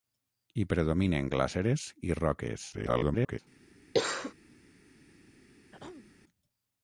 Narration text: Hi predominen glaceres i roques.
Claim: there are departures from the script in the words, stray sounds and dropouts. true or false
true